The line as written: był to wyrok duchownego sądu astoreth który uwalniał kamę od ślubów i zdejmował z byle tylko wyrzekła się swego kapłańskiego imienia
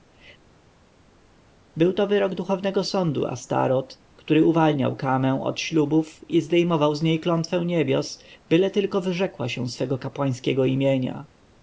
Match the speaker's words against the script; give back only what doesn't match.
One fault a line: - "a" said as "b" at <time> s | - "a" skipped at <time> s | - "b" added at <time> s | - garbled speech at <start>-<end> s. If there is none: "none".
- "niej klątwę niebios" added at 7.0 s